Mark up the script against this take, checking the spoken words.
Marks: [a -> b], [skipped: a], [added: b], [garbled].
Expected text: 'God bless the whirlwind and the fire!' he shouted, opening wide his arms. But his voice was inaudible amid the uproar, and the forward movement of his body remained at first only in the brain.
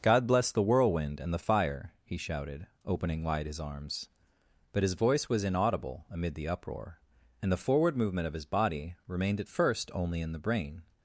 'God bless the whirlwind and the fire!' he shouted, opening wide his arms. But his voice was inaudible amid the uproar, and the forward movement of his body remained at first only in the brain.